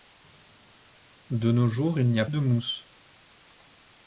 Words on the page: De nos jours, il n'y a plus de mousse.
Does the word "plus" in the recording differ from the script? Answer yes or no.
yes